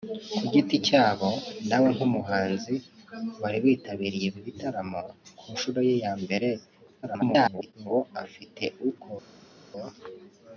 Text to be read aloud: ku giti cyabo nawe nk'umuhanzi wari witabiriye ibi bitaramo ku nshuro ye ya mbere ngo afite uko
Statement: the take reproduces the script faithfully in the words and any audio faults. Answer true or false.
false